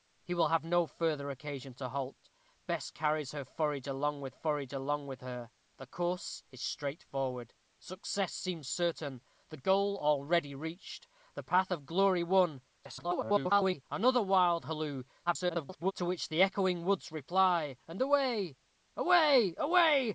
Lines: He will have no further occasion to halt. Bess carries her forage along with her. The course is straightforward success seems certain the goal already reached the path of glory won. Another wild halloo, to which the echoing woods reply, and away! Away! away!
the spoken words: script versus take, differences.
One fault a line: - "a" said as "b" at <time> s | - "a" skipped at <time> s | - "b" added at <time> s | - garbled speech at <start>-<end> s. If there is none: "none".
- "forage along with" added at 4.3 s
- garbled speech at 12.8-13.8 s
- garbled speech at 15.3-15.9 s